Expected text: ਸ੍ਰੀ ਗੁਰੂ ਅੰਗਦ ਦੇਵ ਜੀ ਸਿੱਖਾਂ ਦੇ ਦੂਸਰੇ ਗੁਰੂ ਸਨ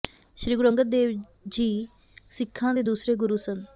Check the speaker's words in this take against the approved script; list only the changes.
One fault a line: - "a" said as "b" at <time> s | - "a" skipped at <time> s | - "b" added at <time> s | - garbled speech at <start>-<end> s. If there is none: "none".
none